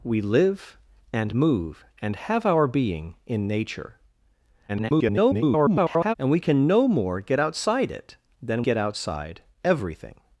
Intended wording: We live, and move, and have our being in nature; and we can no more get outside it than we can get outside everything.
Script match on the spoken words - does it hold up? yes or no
no